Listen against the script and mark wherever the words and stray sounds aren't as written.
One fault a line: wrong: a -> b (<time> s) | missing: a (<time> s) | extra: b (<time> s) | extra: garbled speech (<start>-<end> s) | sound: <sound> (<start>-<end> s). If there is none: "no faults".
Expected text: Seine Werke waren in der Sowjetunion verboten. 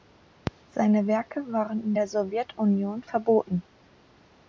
no faults